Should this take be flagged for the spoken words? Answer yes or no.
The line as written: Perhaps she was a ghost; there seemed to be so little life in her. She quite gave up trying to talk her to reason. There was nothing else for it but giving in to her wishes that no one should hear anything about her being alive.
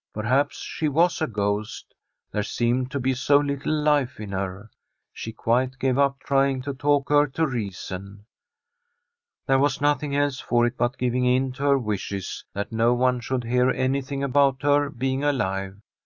no